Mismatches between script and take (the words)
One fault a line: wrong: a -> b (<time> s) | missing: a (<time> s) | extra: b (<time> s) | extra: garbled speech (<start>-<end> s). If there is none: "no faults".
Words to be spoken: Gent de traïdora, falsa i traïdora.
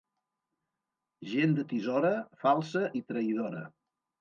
wrong: traïdora -> tisora (1.8 s)